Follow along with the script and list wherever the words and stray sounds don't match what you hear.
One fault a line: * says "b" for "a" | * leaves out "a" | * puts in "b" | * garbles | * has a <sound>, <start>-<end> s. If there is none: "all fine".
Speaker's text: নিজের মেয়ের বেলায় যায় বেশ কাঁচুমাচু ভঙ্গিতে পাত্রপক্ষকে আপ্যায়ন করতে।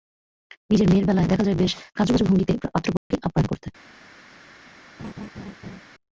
* puts in "দেখা"
* has a dropout, 3.0-3.1 s
* has a laugh, 5.0-5.8 s